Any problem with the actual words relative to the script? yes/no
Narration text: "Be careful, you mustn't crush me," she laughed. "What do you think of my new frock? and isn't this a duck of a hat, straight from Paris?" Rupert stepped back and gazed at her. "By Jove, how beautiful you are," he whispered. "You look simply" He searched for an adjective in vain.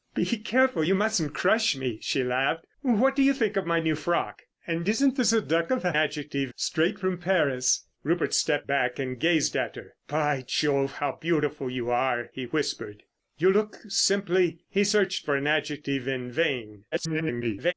yes